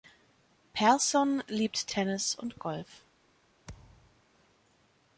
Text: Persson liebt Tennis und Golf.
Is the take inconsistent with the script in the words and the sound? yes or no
yes